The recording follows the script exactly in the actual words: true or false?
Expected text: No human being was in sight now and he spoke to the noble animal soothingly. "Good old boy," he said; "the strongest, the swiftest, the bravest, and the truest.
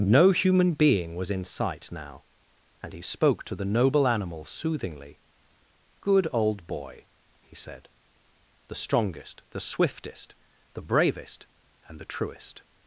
true